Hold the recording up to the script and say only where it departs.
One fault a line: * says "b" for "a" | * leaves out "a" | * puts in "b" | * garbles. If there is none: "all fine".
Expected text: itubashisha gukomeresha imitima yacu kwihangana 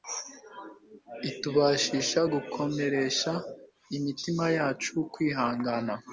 all fine